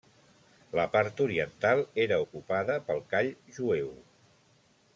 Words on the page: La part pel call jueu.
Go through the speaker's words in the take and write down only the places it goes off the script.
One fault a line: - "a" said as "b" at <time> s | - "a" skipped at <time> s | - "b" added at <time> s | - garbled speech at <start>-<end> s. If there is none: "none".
- "oriental era ocupada" added at 1.2 s